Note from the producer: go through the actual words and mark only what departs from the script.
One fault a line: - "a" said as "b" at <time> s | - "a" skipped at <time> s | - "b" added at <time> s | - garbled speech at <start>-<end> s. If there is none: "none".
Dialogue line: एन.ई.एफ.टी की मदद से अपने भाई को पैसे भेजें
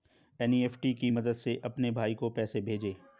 none